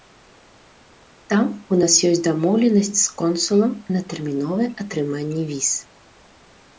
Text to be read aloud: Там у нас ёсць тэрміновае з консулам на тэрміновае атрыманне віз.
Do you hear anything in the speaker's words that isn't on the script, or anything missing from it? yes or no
yes